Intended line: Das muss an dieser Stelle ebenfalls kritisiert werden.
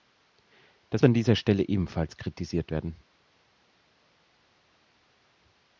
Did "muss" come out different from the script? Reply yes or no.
yes